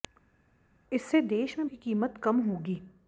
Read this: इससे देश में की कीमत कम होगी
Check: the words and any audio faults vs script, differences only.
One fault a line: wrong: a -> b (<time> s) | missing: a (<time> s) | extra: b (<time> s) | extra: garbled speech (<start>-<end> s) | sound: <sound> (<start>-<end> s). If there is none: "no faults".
no faults